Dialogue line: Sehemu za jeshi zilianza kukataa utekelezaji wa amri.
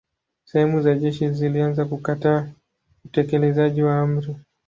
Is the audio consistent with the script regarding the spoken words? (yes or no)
yes